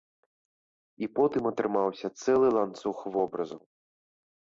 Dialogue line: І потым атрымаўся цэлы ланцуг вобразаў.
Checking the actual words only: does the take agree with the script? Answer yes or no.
yes